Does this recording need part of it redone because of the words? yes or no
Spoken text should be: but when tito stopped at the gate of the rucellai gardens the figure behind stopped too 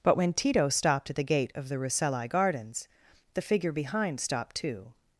no